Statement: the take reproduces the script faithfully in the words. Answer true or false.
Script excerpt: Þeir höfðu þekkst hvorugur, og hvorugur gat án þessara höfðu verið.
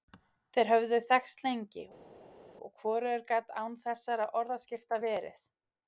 false